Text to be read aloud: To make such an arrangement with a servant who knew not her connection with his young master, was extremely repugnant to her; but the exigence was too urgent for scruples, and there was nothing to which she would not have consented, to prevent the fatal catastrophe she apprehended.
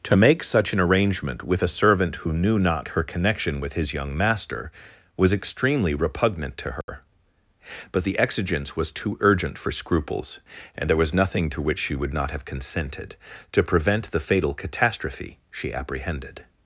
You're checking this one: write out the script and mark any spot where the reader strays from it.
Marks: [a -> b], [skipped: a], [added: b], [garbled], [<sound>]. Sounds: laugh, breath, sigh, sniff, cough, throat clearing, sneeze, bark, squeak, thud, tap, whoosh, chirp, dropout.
To make such an arrangement with a servant who knew not her connection with his young master, was extremely repugnant to her; [dropout] but the exigence was too urgent for scruples, and there was nothing to which she would not have consented, to prevent the fatal catastrophe she apprehended.